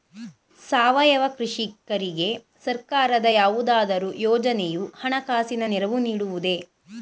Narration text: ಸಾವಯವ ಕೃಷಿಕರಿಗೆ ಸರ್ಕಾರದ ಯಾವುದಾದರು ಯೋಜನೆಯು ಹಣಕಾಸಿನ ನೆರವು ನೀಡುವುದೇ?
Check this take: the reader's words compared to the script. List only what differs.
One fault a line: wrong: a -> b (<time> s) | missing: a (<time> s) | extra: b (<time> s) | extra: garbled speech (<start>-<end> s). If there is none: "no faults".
no faults